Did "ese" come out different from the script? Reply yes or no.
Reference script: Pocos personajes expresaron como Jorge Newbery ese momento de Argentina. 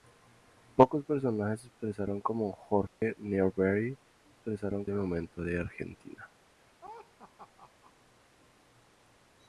yes